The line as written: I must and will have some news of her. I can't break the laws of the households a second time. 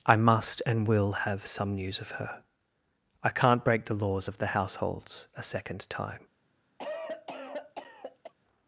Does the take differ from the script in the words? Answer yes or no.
no